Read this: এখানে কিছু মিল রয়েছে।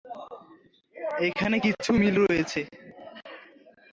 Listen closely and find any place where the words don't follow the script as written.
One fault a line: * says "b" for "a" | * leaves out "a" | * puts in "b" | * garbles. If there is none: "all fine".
all fine